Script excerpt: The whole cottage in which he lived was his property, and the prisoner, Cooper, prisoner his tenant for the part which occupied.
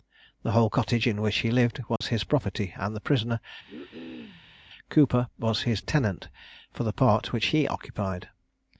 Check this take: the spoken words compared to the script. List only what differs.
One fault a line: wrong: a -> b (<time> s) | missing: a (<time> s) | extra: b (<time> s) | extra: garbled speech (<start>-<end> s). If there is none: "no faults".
wrong: prisoner -> was (5.4 s)
extra: he (7.5 s)